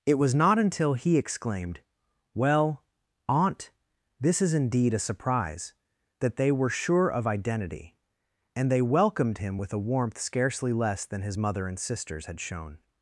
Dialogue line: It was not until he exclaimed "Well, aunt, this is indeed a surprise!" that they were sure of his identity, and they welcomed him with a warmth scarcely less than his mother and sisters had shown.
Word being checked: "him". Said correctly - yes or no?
yes